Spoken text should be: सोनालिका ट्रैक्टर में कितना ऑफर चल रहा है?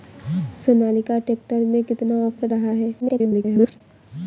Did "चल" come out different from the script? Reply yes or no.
yes